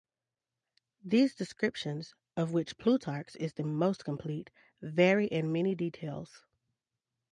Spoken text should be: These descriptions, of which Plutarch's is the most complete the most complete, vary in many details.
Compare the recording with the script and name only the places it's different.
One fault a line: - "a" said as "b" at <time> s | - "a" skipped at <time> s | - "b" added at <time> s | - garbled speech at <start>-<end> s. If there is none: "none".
- "the most complete" skipped at 4.5 s